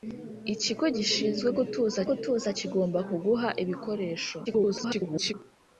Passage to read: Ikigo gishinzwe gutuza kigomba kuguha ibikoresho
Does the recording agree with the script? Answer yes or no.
no